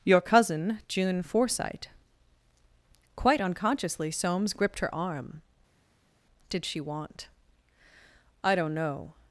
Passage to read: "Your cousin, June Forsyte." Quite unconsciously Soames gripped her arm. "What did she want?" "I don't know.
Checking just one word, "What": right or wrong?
wrong